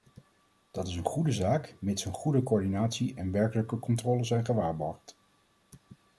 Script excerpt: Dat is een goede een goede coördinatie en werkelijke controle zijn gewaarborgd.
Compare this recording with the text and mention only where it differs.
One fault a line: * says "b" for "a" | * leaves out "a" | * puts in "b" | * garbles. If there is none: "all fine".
* puts in "zaak mits"